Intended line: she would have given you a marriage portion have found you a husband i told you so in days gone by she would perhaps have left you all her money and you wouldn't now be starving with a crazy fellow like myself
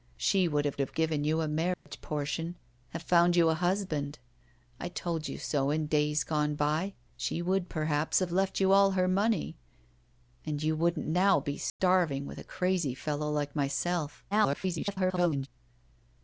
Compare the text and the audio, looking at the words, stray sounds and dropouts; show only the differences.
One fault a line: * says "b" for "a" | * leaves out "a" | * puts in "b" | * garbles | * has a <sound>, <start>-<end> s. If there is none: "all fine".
* puts in "have"
* has a dropout, 1.7-1.9 s
* has a dropout, 11.7-11.8 s
* garbles